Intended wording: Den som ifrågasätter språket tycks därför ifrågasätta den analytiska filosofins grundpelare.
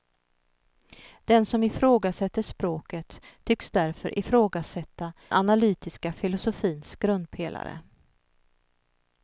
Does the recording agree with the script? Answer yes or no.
no